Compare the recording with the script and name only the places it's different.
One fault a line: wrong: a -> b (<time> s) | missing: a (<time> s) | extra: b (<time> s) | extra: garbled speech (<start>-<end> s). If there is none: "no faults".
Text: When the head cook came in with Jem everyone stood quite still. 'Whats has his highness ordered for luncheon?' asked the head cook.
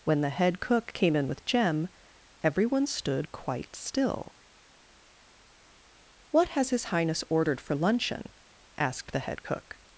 wrong: Whats -> What (6.3 s)